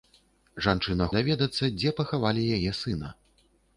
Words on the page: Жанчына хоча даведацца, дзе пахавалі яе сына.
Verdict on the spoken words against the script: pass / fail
fail